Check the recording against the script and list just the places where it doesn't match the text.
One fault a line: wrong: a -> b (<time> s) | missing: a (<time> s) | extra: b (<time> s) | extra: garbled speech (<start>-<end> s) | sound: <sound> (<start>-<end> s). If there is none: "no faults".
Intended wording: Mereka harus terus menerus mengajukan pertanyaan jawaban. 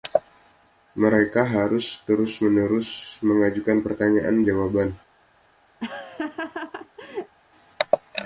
sound: laugh (5.8-7.4 s)